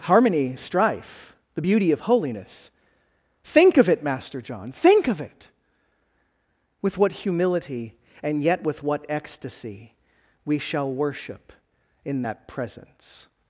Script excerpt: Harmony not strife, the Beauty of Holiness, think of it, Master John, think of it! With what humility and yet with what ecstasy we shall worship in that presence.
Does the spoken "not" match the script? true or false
false